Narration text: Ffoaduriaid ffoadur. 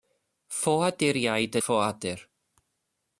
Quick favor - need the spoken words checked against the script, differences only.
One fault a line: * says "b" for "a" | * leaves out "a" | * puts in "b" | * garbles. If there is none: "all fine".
all fine